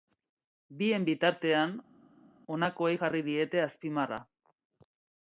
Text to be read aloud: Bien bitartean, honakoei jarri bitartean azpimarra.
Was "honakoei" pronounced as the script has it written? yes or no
yes